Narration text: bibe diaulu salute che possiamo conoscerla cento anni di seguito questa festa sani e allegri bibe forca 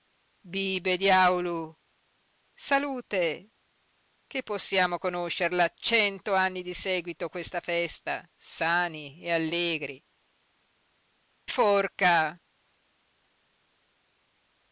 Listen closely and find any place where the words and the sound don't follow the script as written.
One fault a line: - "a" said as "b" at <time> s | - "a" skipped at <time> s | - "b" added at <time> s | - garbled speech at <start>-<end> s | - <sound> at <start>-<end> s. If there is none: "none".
- "bibe" skipped at 10.0 s